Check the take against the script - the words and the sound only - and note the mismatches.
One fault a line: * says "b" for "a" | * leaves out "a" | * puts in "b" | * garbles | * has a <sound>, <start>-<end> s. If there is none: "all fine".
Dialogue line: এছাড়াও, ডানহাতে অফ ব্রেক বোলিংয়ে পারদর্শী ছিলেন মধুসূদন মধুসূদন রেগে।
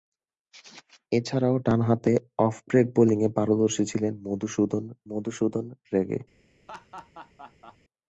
* has a laugh, 6.7-7.8 s